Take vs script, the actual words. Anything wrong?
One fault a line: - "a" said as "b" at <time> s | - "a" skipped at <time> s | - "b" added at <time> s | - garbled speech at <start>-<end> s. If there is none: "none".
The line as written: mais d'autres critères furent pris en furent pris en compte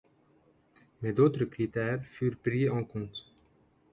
- "furent pris en" skipped at 2.9 s